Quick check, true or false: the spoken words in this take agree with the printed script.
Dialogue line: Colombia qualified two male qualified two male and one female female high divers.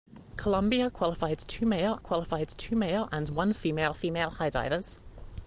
true